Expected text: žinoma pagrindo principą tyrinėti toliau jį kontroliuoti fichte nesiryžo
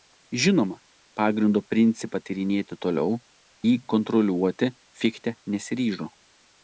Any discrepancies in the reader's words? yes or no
no